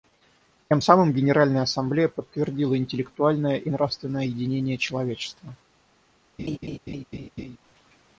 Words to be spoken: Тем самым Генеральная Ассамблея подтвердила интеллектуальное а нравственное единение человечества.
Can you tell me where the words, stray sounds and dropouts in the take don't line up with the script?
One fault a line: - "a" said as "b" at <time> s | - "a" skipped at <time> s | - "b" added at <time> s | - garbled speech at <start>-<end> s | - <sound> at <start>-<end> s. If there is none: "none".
- "а" said as "и" at 3.6 s
- laugh at 6.4-7.6 s